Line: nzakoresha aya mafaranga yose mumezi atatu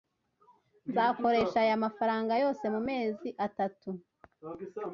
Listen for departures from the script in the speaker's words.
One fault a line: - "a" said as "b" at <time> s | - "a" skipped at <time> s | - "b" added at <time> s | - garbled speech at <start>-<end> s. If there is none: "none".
none